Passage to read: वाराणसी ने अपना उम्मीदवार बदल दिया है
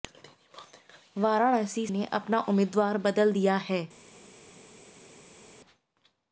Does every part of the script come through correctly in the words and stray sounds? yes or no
yes